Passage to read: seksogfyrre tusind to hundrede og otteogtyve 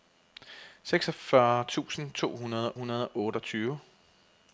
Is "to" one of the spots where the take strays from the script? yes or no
no